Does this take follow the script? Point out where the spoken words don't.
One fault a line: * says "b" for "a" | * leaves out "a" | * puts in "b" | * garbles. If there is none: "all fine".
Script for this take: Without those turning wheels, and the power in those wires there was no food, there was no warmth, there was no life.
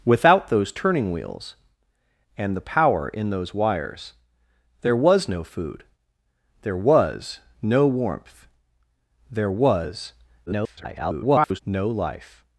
* garbles